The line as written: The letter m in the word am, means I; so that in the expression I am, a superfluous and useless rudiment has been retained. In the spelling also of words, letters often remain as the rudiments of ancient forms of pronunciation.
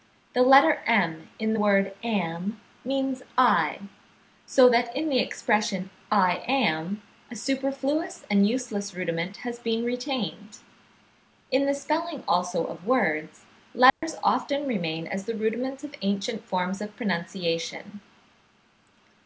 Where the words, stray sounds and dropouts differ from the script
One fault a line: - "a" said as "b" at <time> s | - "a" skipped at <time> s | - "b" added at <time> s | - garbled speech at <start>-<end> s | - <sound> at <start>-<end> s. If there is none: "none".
- dropout at 13.9-14.0 s